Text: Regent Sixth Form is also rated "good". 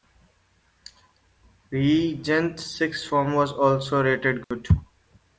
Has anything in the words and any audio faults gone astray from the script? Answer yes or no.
yes